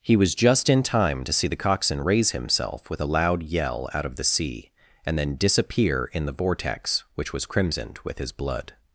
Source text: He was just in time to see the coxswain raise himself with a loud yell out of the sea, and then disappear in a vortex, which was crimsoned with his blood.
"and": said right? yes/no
yes